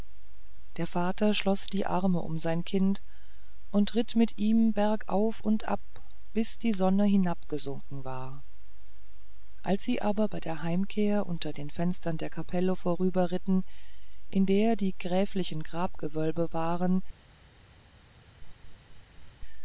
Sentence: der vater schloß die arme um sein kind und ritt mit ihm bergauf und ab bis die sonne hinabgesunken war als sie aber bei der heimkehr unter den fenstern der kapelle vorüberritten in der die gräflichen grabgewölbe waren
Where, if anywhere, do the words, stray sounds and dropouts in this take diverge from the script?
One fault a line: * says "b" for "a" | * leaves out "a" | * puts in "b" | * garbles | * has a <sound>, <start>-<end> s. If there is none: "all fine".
* has a laugh, 18.4-19.3 s